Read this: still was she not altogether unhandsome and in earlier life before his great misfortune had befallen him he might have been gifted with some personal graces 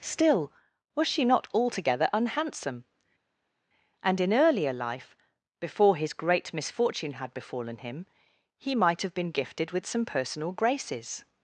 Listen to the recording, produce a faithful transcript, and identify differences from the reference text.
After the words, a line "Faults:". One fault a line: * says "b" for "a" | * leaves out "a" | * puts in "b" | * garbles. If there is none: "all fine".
still was she not altogether unhandsome and in earlier life before his great misfortune had befallen him he might have been gifted with some personal graces
Faults:
all fine